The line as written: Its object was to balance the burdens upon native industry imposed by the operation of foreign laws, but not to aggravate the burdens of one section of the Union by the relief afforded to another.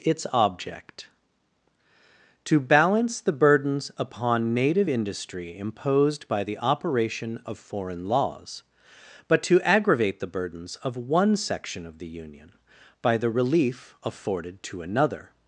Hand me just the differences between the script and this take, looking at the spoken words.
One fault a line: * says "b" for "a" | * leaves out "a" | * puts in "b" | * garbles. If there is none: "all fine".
* leaves out "was"
* leaves out "not"